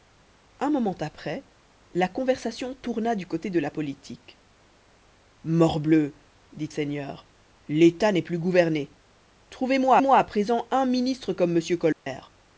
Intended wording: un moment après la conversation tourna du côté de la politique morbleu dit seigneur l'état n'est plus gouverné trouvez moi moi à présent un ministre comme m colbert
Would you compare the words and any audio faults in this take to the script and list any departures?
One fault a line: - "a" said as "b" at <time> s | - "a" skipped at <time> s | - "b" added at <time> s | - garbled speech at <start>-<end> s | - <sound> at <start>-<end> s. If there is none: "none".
- dropout at 11.9-12.1 s